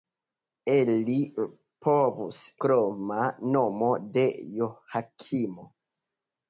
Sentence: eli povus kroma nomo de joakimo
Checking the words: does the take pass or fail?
pass